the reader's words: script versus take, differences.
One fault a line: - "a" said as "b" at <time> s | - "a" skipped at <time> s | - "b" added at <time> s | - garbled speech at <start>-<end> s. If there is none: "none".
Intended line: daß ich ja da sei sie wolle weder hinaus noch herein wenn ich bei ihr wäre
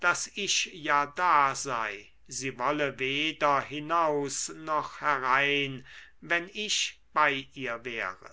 none